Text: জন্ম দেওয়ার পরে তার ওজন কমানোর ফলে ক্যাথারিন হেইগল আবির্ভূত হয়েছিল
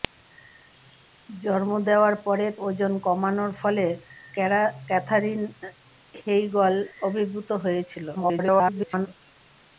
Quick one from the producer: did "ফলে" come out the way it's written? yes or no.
yes